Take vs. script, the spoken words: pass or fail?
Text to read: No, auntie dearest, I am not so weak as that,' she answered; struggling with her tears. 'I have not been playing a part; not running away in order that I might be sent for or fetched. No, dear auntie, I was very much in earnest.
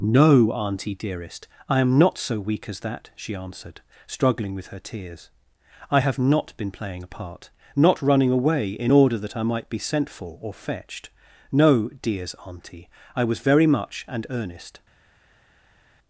fail